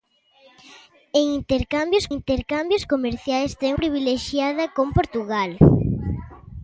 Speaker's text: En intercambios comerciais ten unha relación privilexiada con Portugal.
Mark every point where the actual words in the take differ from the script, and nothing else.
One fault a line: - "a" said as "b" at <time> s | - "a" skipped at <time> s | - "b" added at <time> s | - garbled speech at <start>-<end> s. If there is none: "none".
- "intercambios" added at 2.2 s
- "unha relación" skipped at 3.7 s